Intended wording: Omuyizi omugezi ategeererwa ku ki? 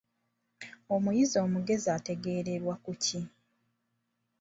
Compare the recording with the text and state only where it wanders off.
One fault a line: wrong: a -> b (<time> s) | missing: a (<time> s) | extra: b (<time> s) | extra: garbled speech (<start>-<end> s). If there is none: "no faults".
no faults